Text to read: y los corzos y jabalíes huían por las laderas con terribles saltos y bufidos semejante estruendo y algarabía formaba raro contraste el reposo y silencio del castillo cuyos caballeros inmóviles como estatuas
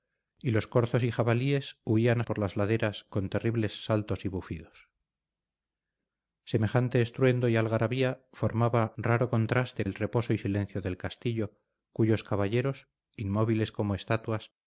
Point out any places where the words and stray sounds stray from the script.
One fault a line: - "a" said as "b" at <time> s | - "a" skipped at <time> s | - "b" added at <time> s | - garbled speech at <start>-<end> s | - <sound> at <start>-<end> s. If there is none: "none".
none